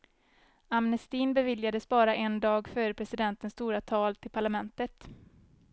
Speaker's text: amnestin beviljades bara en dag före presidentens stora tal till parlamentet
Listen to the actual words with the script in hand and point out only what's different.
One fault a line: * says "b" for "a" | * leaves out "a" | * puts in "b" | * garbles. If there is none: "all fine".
all fine